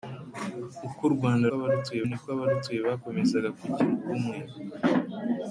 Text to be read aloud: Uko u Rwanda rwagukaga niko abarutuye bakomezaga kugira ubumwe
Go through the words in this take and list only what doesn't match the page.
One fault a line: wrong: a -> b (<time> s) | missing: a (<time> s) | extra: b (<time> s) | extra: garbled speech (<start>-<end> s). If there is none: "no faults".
wrong: rwagukaga -> abarutuye (1.6 s)